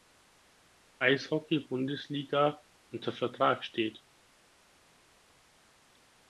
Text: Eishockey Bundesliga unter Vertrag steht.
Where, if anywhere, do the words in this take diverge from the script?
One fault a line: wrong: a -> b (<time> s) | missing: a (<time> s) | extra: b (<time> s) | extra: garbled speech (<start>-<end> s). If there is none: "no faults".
no faults